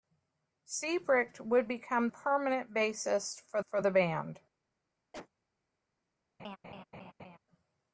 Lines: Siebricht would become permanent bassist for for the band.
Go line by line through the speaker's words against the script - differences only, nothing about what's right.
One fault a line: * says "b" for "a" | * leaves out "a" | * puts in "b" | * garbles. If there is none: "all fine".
all fine